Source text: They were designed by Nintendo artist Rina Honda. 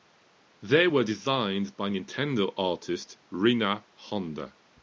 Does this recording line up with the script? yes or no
yes